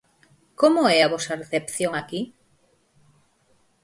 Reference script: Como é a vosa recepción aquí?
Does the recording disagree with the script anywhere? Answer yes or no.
no